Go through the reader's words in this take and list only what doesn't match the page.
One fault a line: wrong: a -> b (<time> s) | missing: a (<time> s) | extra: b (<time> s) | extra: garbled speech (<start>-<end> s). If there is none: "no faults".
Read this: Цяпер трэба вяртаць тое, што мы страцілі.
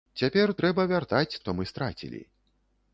missing: тое (1.4 s)